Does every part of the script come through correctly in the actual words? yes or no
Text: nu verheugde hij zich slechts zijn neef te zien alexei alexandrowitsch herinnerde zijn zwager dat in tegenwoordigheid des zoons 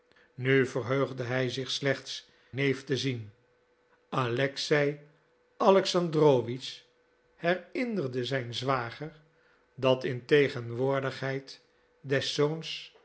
no